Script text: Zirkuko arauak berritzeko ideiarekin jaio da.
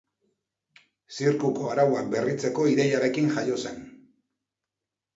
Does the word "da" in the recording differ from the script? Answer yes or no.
yes